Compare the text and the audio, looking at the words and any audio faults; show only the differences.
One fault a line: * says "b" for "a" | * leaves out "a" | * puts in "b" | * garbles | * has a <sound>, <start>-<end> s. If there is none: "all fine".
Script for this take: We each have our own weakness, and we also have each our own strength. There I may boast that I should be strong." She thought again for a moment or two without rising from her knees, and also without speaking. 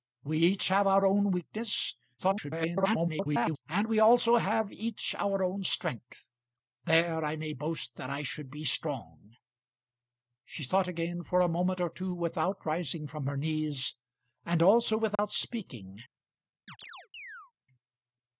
* garbles
* has a dropout, 15.1-15.2 s
* has a chirp, 16.7-17.5 s